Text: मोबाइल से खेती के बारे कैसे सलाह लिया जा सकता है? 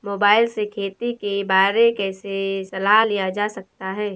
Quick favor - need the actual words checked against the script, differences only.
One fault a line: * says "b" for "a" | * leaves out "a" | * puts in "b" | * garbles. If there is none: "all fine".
all fine